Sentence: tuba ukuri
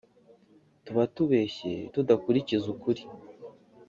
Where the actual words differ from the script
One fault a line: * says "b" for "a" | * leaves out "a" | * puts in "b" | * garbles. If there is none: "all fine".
* puts in "tubeshye tudakurikiza"